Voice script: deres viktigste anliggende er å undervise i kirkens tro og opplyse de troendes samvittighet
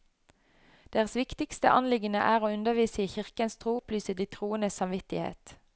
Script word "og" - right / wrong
wrong